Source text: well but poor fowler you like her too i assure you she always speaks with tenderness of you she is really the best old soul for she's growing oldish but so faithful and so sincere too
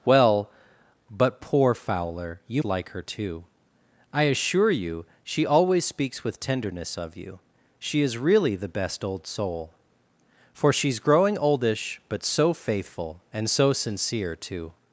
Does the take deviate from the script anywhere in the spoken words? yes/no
no